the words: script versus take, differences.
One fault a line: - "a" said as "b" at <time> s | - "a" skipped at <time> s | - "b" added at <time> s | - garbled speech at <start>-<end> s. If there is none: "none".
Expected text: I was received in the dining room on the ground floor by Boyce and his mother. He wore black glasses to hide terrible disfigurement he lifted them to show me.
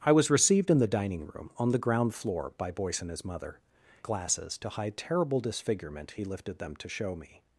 - "He wore black" skipped at 3.6 s